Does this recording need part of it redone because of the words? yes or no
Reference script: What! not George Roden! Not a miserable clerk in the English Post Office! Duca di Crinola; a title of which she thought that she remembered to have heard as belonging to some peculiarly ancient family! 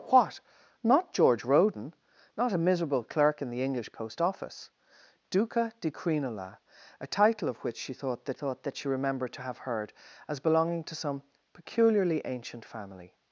yes